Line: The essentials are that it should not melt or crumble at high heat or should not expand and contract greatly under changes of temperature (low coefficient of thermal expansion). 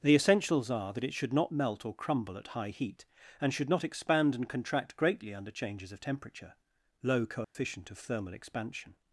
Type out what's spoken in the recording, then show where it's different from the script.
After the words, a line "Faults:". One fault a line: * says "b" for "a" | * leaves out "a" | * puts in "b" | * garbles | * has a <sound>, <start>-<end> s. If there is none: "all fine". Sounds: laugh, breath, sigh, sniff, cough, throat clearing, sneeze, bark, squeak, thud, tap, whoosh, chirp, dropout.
The essentials are that it should not melt or crumble at high heat and should not expand and contract greatly under changes of temperature (low coefficient of thermal expansion).
Faults:
* says "and" for "or"
* has a dropout, 7.4-7.6 s